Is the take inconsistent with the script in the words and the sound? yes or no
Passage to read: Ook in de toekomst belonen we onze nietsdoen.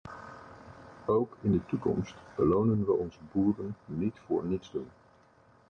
yes